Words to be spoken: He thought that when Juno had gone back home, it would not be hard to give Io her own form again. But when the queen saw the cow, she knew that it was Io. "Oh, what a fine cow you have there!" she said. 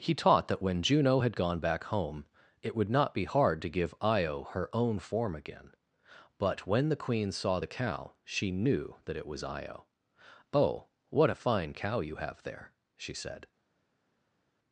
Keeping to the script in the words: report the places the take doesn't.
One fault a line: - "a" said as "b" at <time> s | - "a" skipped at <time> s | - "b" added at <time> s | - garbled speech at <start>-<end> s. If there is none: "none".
- "thought" said as "taught" at 0.1 s